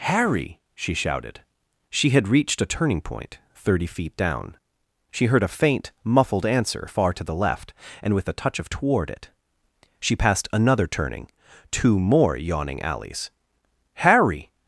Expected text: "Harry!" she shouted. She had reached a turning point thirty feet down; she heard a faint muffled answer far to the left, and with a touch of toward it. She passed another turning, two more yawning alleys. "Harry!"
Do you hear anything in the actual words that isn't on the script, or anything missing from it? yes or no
no